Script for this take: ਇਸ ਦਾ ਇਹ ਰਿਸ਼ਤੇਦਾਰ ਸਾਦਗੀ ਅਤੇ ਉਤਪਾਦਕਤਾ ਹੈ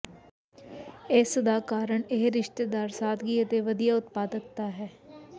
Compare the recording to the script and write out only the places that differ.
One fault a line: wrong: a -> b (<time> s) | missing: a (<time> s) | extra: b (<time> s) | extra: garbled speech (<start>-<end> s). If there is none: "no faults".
extra: ਕਾਰਨ (1.7 s)
extra: ਵਧੀਆ (3.6 s)